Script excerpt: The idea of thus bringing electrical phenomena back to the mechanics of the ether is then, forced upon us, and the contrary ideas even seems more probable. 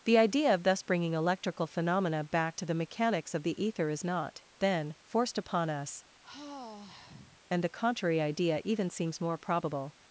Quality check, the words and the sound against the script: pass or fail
fail